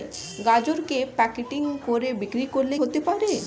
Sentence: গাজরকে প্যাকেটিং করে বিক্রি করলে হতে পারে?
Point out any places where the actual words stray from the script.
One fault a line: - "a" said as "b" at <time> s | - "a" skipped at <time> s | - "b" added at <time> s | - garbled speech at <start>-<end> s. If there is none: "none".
none